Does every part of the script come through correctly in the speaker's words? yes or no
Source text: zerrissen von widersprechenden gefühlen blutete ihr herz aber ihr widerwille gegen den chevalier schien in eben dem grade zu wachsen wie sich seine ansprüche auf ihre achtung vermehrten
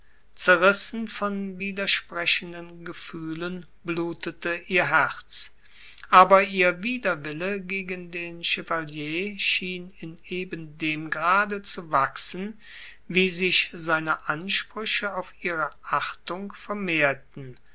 yes